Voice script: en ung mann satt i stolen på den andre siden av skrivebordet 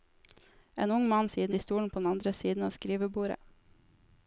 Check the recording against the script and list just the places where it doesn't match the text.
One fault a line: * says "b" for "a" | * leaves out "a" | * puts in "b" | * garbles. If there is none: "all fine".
* says "siden" for "satt"